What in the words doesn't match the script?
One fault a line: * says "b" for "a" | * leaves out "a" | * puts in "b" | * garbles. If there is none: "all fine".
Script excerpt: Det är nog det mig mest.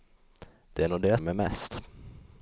all fine